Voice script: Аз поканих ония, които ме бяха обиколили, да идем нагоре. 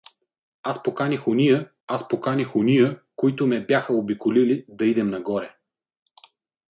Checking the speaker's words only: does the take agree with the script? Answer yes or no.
no